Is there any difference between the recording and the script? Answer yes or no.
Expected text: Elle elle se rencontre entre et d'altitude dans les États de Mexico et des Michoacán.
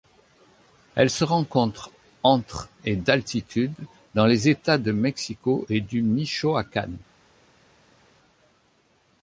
yes